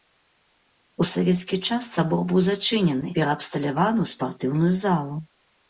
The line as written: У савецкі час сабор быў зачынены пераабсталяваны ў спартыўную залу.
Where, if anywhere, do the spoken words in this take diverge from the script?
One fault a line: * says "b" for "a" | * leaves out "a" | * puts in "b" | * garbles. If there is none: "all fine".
all fine